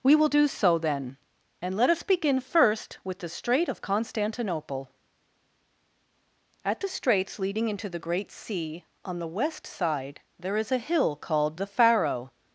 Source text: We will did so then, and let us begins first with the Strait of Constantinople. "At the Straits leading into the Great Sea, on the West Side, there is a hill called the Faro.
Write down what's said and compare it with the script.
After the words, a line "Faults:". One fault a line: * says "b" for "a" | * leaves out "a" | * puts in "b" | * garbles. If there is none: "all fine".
We will do so then, and let us begin first with the Strait of Constantinople. "At the Straits leading into the Great Sea, on the West Side, there is a hill called the Faro.
Faults:
* says "do" for "did"
* says "begin" for "begins"